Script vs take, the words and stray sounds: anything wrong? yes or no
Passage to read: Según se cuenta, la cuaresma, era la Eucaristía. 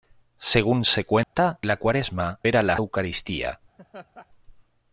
yes